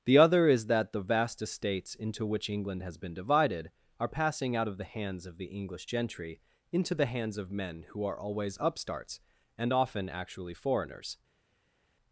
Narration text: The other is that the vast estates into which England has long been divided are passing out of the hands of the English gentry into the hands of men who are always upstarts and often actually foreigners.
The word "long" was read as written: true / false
false